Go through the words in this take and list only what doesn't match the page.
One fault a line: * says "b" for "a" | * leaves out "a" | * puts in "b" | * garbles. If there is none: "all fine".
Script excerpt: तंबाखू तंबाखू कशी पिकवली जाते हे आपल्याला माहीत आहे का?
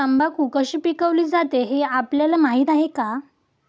* leaves out "तंबाखू"